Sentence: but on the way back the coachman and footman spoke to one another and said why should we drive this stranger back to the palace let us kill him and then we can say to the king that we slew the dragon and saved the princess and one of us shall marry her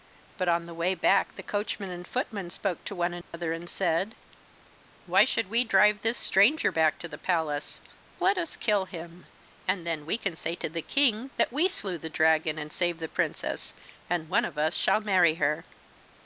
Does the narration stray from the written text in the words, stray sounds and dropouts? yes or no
yes